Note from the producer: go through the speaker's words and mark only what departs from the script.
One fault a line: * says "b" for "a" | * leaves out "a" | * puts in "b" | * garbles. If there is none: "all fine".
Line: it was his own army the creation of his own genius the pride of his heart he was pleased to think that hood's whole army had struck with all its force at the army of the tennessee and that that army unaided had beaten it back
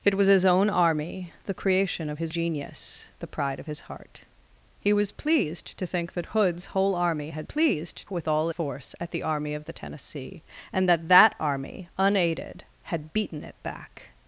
* leaves out "own"
* says "pleased" for "struck"
* leaves out "its"